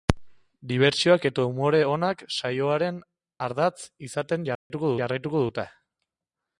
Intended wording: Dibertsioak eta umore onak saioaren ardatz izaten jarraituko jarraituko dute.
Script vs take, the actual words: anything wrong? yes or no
no